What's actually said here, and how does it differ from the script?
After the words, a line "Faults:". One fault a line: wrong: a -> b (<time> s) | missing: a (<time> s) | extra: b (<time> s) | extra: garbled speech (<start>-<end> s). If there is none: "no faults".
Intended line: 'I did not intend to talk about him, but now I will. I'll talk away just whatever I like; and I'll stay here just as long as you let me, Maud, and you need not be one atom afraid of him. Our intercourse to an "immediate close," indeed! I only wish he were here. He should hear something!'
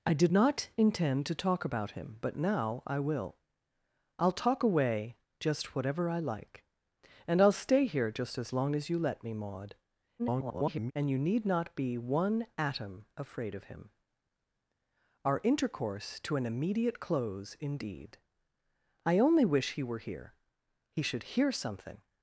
'I did not intend to talk about him, but now I will. I'll talk away just whatever I like; and I'll stay here just as long as you let me, Maud, [garbled] and you need not be one atom afraid of him. Our intercourse to an "immediate close," indeed! I only wish he were here. He should hear something!'
Faults:
extra: garbled speech (10.2-10.9 s)